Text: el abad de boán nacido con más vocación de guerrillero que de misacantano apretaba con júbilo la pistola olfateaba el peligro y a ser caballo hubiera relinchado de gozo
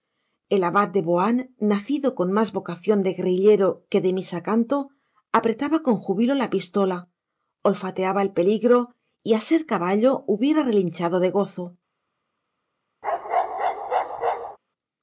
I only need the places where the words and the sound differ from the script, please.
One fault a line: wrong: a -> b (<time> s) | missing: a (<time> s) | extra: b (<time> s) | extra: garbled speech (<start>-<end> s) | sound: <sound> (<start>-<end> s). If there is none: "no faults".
sound: bark (13.0-14.6 s)